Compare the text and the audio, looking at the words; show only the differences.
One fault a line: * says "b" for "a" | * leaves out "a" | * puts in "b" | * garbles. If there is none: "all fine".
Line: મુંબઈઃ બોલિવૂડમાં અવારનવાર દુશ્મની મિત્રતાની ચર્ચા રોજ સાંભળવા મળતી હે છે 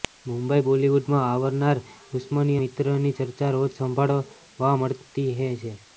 all fine